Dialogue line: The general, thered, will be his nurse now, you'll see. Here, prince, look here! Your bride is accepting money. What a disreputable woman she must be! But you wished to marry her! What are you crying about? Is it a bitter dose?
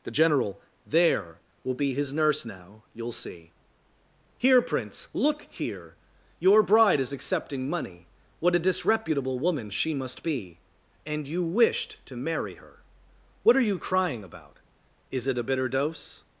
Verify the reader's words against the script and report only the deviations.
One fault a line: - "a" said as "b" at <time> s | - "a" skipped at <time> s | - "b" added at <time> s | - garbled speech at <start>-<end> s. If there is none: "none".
- "thered" said as "there" at 0.8 s
- "But" said as "And" at 11.1 s